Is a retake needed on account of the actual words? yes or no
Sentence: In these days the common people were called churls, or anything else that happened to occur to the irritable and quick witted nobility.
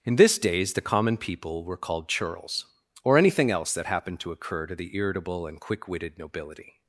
yes